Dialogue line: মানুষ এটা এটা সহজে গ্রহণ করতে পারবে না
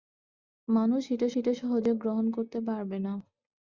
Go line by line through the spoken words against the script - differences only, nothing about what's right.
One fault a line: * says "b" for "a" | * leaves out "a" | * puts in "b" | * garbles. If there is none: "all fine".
all fine